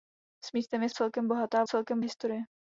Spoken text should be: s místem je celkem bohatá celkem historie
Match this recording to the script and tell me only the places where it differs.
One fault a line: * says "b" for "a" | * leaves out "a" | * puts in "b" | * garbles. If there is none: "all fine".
all fine